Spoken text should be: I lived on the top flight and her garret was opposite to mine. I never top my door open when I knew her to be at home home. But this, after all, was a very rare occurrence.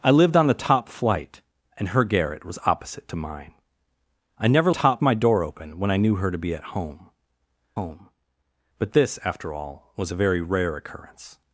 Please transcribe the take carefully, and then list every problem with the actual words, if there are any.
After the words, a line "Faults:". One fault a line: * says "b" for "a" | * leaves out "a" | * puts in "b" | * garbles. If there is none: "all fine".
I lived on the top flight and her garret was opposite to mine. I never top my door open when I knew her to be at home home. But this, after all, was a very rare occurrence.
Faults:
all fine